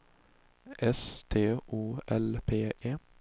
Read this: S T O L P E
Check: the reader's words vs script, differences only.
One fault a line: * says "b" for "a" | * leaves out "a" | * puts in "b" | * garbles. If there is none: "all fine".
all fine